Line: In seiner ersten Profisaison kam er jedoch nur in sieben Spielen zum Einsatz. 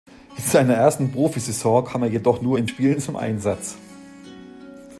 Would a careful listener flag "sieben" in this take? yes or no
yes